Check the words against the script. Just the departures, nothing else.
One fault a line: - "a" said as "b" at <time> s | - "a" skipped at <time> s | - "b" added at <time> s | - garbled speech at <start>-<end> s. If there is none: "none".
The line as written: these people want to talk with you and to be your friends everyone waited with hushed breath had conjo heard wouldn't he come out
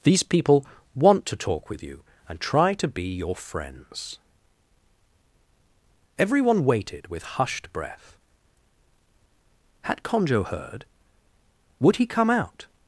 - "try" added at 2.4 s
- "wouldn't" said as "would" at 11.8 s